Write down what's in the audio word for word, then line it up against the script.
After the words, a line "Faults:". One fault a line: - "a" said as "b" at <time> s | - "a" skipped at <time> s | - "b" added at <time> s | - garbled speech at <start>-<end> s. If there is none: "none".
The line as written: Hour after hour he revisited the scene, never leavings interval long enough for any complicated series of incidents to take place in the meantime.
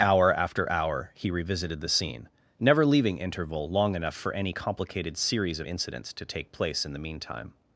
Hour after hour he revisited the scene, never leaving interval long enough for any complicated series of incidents to take place in the meantime.
Faults:
- "leavings" said as "leaving" at 2.9 s